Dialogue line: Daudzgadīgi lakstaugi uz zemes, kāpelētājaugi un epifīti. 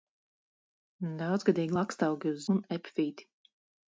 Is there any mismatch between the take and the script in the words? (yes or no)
yes